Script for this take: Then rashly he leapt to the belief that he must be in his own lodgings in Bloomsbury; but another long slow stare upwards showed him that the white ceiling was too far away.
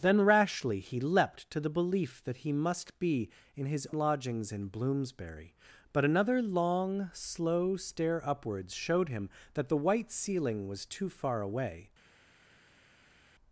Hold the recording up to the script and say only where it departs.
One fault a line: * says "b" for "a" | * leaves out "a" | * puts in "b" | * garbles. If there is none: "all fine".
* leaves out "own"